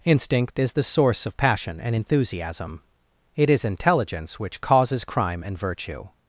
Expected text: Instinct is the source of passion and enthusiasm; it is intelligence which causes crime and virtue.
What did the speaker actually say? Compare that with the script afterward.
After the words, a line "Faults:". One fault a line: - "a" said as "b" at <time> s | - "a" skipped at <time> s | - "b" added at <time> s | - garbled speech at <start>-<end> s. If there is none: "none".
Instinct is the source of passion and enthusiasm; it is intelligence which causes crime and virtue.
Faults:
none